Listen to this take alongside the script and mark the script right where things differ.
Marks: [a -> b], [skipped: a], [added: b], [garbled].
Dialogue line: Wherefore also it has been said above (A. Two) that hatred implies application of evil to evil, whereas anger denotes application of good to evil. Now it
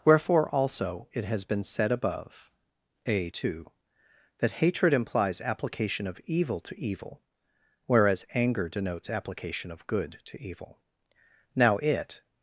Wherefore also it has been said above (A. Two) that hatred implies application of evil to evil, whereas anger denotes application of good to evil. Now it